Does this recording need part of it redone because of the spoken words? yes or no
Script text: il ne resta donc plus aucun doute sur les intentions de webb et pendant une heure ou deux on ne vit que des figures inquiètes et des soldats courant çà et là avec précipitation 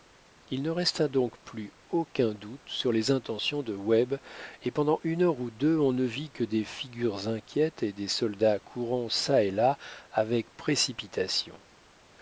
no